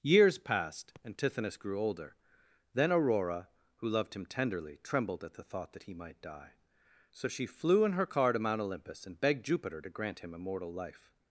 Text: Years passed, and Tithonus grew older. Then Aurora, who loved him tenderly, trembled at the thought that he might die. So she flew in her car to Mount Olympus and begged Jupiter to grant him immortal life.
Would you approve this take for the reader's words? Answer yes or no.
yes